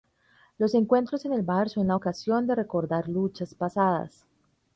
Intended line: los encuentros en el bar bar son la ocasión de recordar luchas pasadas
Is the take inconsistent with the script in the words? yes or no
yes